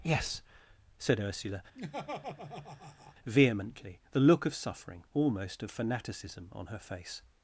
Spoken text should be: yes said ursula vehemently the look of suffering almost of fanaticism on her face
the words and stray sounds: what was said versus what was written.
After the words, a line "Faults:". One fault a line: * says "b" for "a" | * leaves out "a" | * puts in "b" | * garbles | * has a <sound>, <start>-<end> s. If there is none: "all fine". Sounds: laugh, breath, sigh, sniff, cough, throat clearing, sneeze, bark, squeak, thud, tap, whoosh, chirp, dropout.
yes said ursula vehemently the look of suffering almost of fanaticism on her face
Faults:
* has a laugh, 1.7-3.1 s